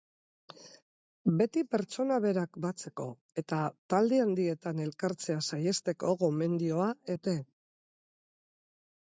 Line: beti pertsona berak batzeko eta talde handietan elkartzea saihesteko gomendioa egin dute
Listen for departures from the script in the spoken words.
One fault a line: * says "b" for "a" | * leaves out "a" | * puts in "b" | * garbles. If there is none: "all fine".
* leaves out "egin"